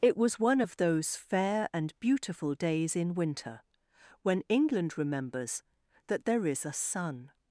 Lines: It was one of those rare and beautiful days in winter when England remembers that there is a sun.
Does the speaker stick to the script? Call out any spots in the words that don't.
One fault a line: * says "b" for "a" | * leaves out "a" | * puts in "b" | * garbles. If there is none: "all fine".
* says "fair" for "rare"